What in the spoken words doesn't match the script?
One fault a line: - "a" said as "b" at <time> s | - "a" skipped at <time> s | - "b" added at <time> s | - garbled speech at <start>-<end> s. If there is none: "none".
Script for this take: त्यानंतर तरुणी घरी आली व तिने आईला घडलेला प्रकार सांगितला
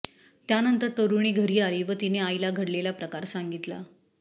none